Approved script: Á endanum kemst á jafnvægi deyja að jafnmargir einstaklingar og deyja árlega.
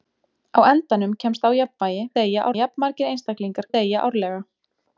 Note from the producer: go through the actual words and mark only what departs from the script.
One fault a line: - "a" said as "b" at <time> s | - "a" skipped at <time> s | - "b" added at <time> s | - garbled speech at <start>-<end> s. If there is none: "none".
none